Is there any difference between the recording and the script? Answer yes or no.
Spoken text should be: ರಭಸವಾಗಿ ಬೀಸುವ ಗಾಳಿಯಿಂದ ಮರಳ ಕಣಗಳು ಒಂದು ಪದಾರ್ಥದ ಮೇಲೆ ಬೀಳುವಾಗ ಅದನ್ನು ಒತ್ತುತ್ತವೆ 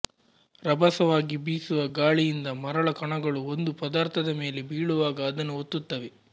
no